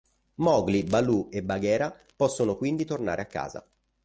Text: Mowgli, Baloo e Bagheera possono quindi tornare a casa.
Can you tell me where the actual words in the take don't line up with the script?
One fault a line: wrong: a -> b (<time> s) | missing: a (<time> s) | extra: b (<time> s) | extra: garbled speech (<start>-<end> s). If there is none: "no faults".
no faults